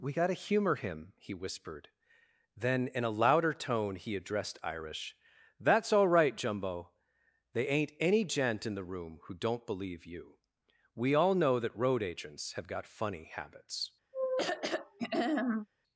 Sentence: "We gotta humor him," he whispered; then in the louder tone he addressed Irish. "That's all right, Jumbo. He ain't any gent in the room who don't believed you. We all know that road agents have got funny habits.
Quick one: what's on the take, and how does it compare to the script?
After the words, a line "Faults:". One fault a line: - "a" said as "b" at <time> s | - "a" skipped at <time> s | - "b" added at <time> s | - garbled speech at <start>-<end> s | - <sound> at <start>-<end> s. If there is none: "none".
"We gotta humor him," he whispered; then in a louder tone he addressed Irish. "That's all right, Jumbo. They ain't any gent in the room who don't believe you. We all know that road agents have got funny habits.
Faults:
- "the" said as "a" at 3.0 s
- "He" said as "They" at 7.5 s
- "believed" said as "believe" at 9.7 s
- throat clearing at 14.1-15.7 s